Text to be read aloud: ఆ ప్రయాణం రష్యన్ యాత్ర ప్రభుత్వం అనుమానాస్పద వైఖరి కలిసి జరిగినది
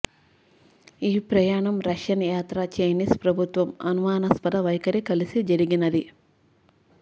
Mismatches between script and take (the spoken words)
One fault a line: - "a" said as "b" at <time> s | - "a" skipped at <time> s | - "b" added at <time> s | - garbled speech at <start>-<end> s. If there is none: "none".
- "ఆ" said as "ఈ" at 1.0 s
- "చైనీస్" added at 2.8 s